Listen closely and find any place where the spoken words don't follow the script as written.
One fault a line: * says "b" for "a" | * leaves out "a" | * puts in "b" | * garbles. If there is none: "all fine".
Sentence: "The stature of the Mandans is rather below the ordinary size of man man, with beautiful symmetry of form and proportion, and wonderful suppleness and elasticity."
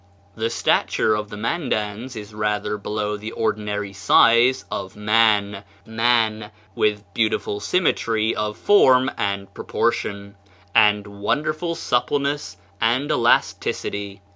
all fine